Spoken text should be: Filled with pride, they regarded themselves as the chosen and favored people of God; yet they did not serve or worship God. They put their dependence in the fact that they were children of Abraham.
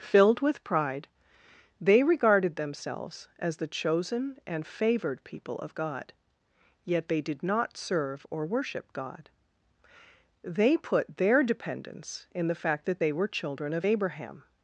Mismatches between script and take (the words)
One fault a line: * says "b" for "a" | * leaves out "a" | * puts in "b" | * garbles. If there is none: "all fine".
all fine